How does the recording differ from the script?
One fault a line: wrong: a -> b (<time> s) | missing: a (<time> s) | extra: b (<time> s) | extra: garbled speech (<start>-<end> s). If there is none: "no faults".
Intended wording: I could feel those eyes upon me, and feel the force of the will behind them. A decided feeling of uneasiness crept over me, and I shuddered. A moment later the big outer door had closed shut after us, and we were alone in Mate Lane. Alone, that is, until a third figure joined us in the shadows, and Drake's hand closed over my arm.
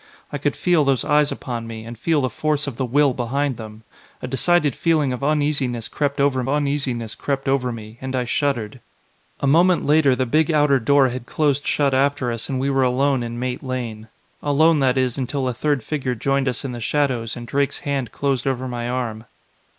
extra: uneasiness crept over (6.5 s)